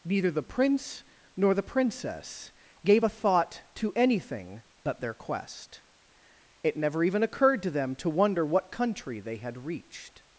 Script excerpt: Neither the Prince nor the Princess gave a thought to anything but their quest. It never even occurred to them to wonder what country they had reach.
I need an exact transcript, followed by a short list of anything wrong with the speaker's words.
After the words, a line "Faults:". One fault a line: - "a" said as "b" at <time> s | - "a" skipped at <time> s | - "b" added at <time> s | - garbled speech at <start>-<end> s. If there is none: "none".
Neither the Prince nor the Princess gave a thought to anything but their quest. It never even occurred to them to wonder what country they had reached.
Faults:
- "reach" said as "reached" at 9.7 s